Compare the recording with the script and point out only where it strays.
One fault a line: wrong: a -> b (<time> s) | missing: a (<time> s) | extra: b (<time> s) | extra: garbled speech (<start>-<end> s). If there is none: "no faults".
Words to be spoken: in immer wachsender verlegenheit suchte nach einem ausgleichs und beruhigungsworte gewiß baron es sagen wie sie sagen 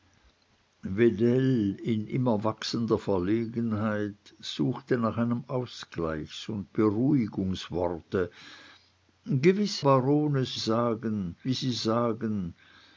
no faults